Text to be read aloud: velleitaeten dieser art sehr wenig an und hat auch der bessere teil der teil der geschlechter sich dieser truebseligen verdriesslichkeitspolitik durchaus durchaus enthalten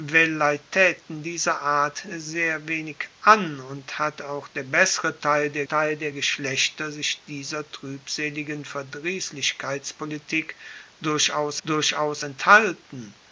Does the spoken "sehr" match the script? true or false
true